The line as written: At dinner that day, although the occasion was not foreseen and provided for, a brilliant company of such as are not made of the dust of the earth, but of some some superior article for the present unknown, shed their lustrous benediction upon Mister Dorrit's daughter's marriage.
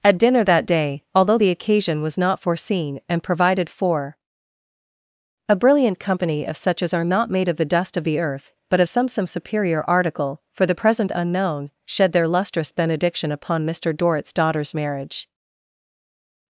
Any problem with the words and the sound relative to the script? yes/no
no